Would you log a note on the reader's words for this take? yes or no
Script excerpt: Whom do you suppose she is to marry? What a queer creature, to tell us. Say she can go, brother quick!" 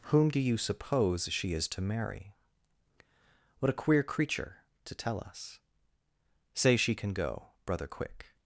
no